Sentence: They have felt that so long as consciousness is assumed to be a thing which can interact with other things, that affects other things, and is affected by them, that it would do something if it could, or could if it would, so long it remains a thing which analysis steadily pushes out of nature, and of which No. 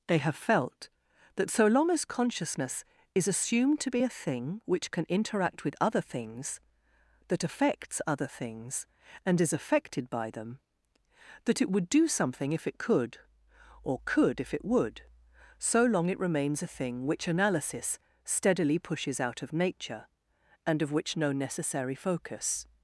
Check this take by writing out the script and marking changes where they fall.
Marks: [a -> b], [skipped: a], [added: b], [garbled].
They have felt that so long as consciousness is assumed to be a thing which can interact with other things, that affects other things, and is affected by them, that it would do something if it could, or could if it would, so long it remains a thing which analysis steadily pushes out of nature, and of which No. [added: necessary focus]